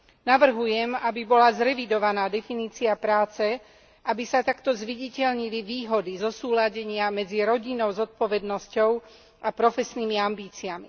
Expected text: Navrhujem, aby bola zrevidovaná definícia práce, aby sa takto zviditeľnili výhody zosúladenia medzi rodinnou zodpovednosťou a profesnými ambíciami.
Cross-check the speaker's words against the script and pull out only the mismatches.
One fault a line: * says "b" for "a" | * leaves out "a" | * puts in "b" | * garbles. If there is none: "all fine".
all fine